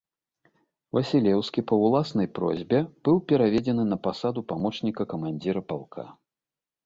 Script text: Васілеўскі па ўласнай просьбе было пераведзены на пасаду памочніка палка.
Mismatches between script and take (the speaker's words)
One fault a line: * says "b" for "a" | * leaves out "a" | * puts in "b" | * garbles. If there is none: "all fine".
* says "быў" for "было"
* puts in "камандзіра"